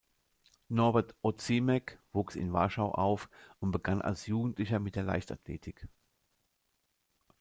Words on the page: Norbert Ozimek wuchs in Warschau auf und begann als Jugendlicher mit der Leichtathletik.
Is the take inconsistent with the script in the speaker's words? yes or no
no